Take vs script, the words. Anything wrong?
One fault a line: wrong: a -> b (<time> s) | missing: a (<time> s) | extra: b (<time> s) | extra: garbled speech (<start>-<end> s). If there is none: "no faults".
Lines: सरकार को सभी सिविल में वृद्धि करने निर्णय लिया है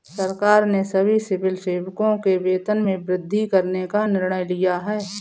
wrong: को -> ने (0.7 s)
extra: सेवकों के वेतन (1.6 s)
extra: का (3.9 s)